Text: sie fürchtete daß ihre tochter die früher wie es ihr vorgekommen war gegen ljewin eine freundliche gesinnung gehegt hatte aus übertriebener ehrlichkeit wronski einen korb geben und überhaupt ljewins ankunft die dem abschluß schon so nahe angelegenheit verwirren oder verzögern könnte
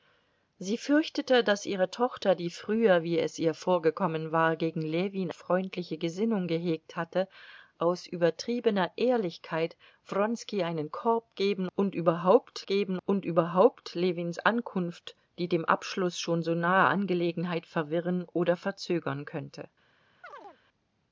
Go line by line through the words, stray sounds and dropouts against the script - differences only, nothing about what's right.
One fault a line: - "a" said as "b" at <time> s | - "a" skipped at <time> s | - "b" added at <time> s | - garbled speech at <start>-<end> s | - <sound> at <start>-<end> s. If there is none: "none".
- "eine" skipped at 5.3 s
- "geben und überhaupt" added at 12.7 s
- chirp at 20.2-20.6 s